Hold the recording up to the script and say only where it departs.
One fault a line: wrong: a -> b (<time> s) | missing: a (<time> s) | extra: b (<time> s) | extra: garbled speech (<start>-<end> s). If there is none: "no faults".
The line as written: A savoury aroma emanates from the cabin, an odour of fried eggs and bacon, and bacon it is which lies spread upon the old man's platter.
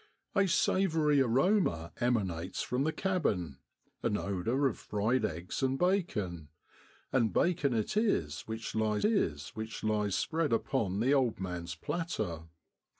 extra: is which lies (9.0 s)